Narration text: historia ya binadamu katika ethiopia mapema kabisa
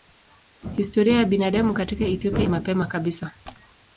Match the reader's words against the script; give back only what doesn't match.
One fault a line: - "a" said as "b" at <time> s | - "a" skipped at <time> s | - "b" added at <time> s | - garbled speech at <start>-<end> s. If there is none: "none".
none